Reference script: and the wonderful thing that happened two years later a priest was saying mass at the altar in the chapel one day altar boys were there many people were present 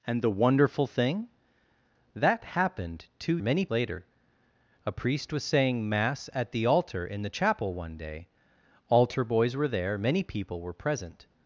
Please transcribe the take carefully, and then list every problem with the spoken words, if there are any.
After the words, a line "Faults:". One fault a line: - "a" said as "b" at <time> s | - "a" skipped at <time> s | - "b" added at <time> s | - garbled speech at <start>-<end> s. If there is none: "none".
and the wonderful thing that happened two many later a priest was saying mass at the altar in the chapel one day altar boys were there many people were present
Faults:
- "years" said as "many" at 3.4 s